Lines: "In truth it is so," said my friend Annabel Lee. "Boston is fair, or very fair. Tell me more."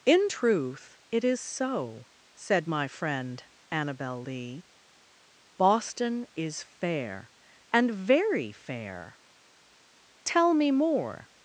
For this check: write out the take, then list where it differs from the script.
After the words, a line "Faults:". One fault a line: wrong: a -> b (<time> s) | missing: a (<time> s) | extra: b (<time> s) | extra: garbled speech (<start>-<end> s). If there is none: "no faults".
"In truth it is so," said my friend Annabel Lee. "Boston is fair, and very fair. Tell me more."
Faults:
wrong: or -> and (7.7 s)